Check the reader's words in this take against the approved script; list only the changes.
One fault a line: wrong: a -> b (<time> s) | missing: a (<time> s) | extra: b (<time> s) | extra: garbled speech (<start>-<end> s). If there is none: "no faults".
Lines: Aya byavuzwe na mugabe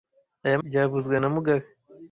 no faults